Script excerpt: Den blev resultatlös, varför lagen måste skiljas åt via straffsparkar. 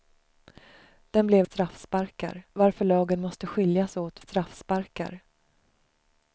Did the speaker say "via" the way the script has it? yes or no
no